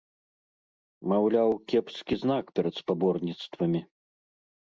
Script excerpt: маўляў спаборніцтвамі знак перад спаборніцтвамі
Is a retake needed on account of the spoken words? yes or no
yes